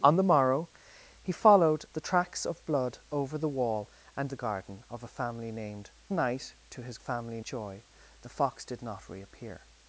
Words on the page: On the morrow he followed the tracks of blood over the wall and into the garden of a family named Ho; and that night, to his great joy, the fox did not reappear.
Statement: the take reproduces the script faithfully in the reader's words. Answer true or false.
false